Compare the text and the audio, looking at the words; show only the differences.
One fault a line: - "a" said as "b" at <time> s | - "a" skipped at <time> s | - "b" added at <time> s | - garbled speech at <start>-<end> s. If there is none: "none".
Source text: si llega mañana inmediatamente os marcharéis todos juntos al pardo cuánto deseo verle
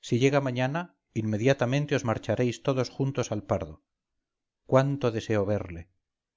none